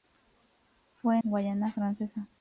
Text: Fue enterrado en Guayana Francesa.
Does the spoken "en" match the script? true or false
false